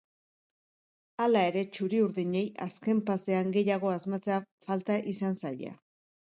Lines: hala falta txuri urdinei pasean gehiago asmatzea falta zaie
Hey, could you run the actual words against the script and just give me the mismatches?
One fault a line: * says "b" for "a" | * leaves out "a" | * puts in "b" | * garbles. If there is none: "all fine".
* says "ere" for "falta"
* puts in "azken"
* puts in "izan"